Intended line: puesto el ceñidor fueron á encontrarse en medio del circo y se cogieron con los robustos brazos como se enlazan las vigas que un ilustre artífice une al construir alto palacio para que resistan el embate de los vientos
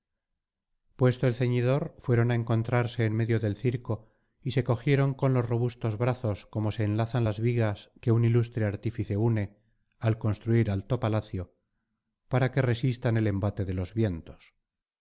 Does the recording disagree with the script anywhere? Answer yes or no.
no